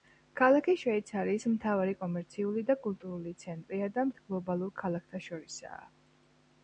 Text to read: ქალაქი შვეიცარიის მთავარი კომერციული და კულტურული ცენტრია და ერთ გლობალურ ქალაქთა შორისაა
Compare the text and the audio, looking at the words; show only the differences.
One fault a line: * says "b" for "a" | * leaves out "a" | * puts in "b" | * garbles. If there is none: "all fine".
all fine